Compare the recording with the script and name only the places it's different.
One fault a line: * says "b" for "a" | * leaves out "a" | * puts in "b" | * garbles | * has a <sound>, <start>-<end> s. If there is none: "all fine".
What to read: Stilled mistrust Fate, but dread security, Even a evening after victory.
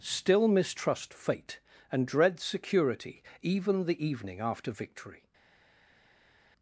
* says "Still" for "Stilled"
* says "and" for "but"
* says "the" for "a"